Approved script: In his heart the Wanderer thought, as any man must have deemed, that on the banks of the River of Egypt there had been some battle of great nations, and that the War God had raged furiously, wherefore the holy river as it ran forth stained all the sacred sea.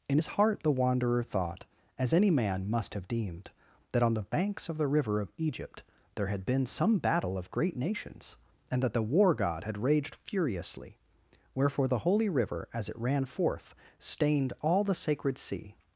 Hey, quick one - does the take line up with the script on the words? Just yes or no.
yes